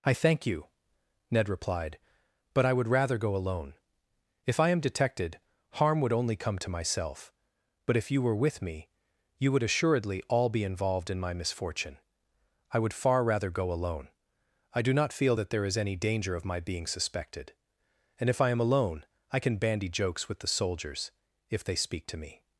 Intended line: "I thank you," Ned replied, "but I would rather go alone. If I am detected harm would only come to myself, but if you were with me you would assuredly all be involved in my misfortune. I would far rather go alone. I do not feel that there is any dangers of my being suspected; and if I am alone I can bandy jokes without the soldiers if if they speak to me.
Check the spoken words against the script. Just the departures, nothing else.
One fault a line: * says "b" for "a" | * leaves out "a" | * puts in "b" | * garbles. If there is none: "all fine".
* says "danger" for "dangers"
* says "with" for "without"
* leaves out "if"